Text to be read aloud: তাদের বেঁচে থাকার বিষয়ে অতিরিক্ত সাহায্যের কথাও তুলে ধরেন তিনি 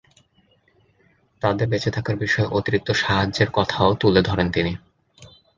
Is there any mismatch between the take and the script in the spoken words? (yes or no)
no